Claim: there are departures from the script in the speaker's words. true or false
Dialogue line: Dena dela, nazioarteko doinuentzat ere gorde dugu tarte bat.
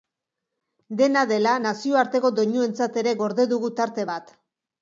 false